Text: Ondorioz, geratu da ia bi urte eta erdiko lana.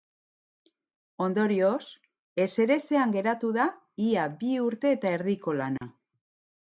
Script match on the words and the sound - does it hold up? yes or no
no